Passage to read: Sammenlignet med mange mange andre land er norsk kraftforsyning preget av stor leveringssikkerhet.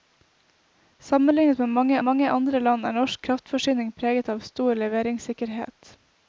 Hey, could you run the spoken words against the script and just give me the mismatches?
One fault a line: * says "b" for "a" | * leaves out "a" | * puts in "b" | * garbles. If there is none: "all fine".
all fine